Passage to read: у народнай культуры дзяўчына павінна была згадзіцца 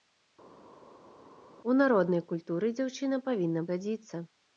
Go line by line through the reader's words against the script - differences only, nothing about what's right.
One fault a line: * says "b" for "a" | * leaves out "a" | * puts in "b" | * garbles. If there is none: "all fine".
* leaves out "была"